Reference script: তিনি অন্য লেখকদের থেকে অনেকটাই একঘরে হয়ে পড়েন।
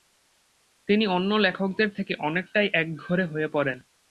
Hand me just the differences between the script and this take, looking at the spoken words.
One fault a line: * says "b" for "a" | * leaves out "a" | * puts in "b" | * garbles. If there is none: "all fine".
all fine